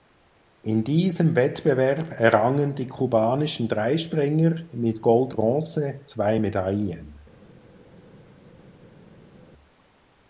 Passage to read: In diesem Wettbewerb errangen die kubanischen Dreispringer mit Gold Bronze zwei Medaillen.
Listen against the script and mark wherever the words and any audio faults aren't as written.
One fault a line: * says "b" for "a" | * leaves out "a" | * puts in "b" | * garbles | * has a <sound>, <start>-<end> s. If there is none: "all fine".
all fine